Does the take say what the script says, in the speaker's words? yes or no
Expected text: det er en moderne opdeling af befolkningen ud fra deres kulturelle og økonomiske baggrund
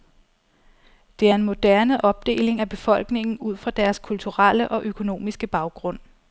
yes